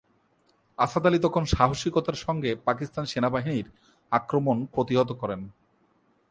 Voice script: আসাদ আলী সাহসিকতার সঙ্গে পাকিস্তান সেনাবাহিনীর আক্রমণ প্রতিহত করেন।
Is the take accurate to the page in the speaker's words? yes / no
no